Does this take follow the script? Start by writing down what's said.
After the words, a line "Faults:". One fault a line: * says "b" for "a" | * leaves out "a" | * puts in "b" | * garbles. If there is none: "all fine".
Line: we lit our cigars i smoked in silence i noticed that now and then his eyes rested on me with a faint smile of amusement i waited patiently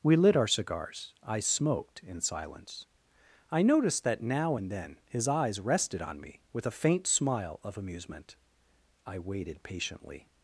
we lit our cigars i smoked in silence i noticed that now and then his eyes rested on me with a faint smile of amusement i waited patiently
Faults:
all fine